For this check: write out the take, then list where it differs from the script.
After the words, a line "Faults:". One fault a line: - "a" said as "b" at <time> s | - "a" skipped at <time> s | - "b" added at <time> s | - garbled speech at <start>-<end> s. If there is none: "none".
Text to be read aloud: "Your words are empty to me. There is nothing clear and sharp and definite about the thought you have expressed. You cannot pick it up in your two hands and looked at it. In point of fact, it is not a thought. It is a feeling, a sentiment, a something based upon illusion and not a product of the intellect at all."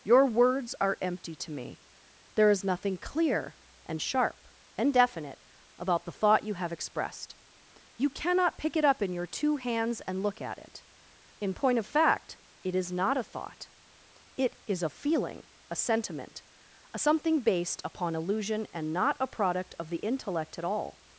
"Your words are empty to me. There is nothing clear and sharp and definite about the thought you have expressed. You cannot pick it up in your two hands and look at it. In point of fact, it is not a thought. It is a feeling, a sentiment, a something based upon illusion and not a product of the intellect at all."
Faults:
- "looked" said as "look" at 10.2 s